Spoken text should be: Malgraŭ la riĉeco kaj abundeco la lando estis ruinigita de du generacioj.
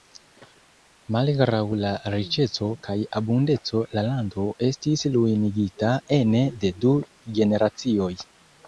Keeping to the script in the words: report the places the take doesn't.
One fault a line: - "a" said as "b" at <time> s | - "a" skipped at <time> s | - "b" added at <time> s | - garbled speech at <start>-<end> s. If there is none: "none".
- "ene" added at 6.2 s